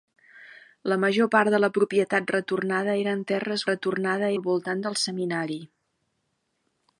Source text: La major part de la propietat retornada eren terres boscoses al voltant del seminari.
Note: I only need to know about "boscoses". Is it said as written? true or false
false